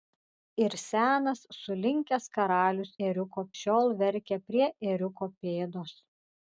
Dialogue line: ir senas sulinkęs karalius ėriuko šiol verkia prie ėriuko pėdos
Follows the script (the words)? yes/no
yes